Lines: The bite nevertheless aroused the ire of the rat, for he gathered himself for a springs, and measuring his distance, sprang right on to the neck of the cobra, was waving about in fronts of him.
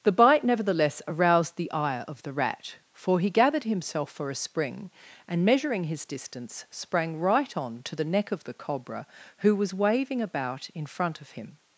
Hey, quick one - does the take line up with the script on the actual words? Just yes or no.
no